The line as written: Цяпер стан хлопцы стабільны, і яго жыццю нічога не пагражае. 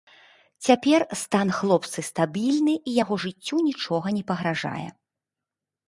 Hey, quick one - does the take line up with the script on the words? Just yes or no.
yes